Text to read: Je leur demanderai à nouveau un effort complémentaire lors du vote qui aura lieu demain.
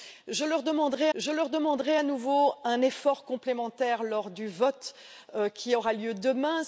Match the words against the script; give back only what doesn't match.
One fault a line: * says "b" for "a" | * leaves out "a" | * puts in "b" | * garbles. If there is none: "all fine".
* puts in "je leur demanderai"